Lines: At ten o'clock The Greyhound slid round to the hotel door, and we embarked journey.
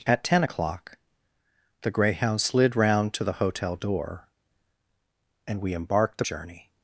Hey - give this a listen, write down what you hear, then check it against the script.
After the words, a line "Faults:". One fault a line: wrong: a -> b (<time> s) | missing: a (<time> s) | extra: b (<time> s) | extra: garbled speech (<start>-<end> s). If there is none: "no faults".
At ten o'clock The Greyhound slid round to the hotel door, and we embarked journey.
Faults:
no faults